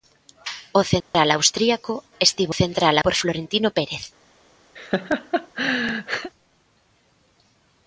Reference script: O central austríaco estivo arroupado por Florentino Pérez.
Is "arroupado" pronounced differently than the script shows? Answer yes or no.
yes